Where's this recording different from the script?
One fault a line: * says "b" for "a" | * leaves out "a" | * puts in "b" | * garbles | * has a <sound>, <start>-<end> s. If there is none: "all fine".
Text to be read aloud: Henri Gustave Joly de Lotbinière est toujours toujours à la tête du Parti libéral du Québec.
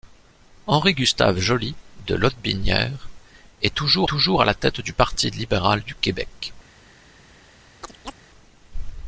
* has a chirp, 7.8-8.2 s